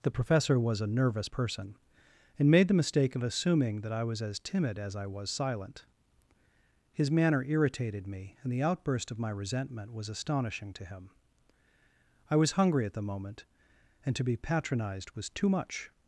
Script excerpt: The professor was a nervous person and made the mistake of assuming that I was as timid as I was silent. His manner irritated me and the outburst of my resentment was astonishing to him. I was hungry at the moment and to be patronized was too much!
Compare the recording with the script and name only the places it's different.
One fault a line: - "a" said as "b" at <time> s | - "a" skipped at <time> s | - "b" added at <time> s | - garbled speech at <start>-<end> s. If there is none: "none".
none